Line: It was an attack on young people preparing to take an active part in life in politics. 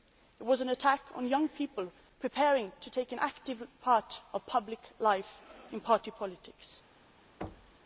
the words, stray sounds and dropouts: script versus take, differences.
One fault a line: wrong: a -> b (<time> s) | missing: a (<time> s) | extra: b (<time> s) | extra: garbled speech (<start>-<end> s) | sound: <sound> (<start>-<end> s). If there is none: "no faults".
extra: public (4.4 s)
extra: party (5.8 s)
sound: thud (7.4-7.8 s)